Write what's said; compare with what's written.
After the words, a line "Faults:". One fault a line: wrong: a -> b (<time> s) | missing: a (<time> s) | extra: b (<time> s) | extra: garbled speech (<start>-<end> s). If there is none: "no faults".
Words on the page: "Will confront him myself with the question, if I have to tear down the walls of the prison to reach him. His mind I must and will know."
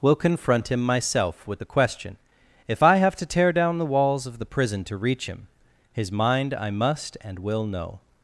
"Will confront him myself with the question, if I have to tear down the walls of the prison to reach him. His mind I must and will know."
Faults:
no faults